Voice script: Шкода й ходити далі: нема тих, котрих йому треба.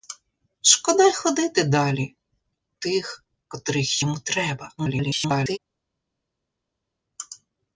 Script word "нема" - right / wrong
wrong